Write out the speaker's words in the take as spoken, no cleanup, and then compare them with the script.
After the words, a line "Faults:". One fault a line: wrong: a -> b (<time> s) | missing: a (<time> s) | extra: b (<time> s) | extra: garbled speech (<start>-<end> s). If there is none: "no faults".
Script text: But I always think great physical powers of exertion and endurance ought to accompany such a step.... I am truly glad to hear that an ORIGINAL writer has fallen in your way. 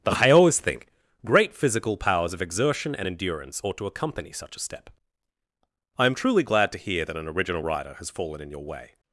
But I always think great physical powers of exertion and endurance ought to accompany such a step.... I am truly glad to hear that an ORIGINAL writer has fallen in your way.
Faults:
no faults